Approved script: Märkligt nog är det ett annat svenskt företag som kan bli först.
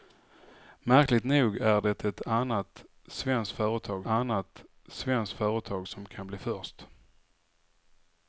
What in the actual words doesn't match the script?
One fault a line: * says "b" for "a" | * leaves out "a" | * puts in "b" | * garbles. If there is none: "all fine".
* puts in "annat svenskt företag"